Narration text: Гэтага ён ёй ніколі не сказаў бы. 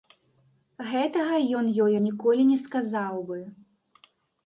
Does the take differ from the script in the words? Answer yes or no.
no